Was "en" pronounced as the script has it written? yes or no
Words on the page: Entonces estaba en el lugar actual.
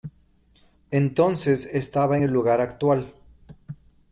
no